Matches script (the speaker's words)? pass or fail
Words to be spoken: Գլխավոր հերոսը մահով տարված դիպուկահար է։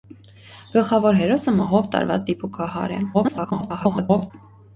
fail